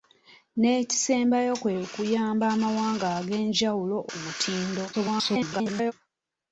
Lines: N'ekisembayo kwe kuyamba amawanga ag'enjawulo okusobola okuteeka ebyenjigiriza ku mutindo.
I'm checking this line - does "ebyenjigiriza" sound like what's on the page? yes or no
no